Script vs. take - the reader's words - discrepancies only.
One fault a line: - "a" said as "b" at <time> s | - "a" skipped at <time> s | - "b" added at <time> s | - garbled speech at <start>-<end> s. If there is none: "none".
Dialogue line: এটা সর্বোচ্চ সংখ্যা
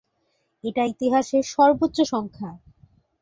- "ইতিহাসের" added at 0.8 s